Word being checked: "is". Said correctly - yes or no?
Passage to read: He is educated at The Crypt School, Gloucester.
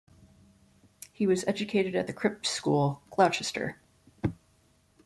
no